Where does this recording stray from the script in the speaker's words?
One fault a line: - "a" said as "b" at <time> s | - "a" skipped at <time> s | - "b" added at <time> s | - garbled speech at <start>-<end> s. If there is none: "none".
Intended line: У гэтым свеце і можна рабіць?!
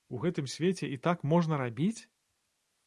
- "так" added at 1.1 s